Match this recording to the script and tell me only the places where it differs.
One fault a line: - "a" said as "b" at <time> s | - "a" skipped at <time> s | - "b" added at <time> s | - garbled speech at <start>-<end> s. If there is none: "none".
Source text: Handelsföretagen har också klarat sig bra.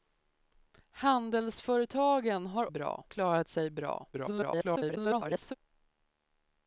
- "också" said as "bra" at 2.7 s
- garbled speech at 4.1-5.6 s